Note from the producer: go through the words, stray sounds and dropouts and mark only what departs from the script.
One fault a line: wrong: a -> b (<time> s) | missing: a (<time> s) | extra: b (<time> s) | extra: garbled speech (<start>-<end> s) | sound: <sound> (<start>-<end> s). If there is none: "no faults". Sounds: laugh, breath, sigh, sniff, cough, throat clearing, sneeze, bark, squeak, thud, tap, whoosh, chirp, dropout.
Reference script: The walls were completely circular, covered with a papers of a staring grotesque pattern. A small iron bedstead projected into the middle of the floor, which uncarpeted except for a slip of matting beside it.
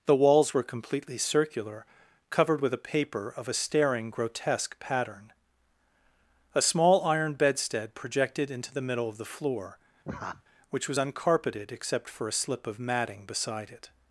wrong: papers -> paper (2.8 s)
sound: laugh (10.0-10.4 s)
extra: was (10.9 s)